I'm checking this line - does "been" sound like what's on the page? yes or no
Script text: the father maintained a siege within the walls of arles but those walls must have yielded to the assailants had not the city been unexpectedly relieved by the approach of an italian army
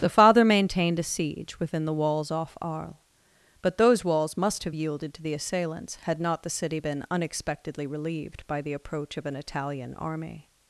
yes